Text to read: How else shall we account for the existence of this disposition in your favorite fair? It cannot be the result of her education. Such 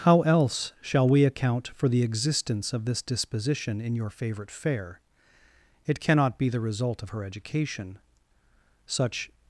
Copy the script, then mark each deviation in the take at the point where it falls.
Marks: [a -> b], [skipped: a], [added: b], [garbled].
How else shall we account for the existence of this disposition in your favorite fair? It cannot be the result of her education. Such